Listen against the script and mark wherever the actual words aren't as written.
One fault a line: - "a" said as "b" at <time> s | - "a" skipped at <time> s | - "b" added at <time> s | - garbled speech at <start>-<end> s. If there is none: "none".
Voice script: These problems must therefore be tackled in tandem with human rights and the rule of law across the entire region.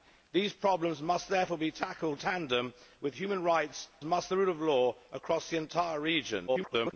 - "in" skipped at 2.2 s
- "and" said as "must" at 4.0 s
- garbled speech at 6.5-6.9 s